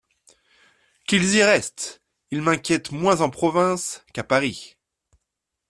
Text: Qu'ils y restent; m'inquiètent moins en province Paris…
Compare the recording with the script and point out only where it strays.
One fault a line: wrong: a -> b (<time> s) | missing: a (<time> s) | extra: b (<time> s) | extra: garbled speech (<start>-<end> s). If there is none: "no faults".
extra: ils (2.3 s)
extra: qu'à (4.1 s)